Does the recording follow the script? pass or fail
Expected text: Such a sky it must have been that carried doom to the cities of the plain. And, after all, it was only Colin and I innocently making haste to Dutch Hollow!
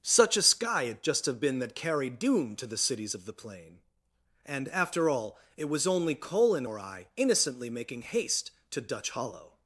fail